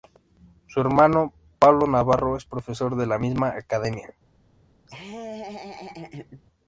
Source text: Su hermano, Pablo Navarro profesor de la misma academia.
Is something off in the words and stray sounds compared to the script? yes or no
yes